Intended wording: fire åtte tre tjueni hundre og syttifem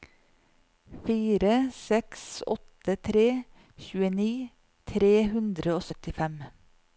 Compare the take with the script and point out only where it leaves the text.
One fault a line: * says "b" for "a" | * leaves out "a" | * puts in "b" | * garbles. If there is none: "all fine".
* puts in "seks"
* puts in "tre"